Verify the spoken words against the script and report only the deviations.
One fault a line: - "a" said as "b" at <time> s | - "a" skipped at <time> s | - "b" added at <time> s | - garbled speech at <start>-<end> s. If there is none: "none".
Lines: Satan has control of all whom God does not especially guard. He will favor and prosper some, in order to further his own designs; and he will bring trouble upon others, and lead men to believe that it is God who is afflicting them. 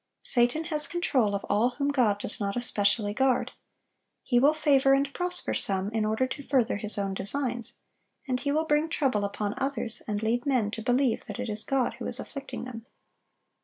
none